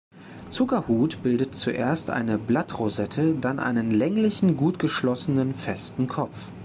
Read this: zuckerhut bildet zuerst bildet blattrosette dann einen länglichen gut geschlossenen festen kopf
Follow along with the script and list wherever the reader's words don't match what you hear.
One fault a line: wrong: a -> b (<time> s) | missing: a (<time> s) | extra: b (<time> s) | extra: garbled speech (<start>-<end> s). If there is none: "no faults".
wrong: bildet -> eine (2.1 s)